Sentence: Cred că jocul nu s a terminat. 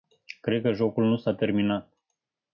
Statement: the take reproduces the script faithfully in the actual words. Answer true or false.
true